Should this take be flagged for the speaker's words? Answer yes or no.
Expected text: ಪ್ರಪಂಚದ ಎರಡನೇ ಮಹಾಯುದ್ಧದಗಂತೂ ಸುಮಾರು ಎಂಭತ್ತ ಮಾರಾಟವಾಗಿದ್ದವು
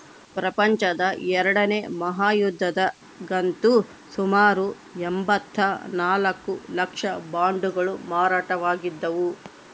yes